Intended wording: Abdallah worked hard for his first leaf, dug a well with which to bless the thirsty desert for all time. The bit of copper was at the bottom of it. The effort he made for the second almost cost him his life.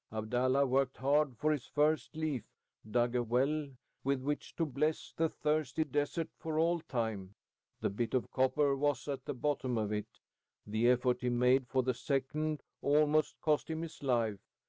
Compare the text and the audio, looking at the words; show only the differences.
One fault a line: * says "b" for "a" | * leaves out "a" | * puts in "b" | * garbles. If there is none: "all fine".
all fine